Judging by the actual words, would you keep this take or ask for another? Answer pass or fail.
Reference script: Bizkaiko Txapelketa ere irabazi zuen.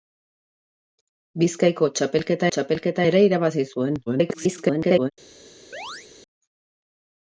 fail